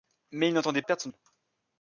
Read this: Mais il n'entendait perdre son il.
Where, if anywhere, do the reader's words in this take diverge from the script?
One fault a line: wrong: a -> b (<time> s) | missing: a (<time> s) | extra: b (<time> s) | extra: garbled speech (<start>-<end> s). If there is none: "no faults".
no faults